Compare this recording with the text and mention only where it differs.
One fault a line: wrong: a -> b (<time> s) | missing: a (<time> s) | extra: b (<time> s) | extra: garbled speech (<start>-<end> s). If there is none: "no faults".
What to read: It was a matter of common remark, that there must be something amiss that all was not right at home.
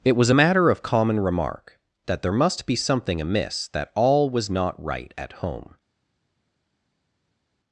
no faults